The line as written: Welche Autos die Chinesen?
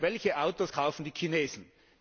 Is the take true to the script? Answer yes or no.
no